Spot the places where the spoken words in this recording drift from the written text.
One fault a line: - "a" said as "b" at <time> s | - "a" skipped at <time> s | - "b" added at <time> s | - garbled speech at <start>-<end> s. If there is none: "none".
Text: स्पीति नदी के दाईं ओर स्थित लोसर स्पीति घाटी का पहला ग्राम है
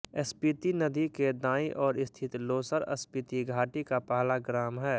none